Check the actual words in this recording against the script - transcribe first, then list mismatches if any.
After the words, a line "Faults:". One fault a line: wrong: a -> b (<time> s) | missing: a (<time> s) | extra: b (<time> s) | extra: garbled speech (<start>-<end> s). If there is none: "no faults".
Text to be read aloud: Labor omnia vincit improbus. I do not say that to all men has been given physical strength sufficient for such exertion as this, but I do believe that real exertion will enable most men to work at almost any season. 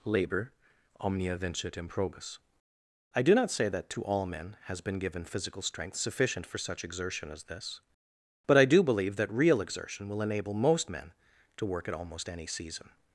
Labor omnia vincit improbus. I do not say that to all men has been given physical strength sufficient for such exertion as this, but I do believe that real exertion will enable most men to work at almost any season.
Faults:
no faults